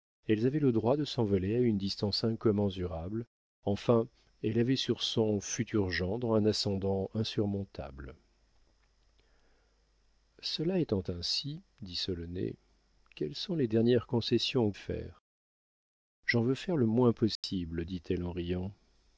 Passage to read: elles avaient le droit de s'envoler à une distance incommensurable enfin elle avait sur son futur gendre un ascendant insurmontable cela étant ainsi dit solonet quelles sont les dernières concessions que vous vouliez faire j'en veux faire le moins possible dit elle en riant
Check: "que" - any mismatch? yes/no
yes